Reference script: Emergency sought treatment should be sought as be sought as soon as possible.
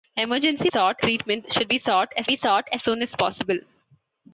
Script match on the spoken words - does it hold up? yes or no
yes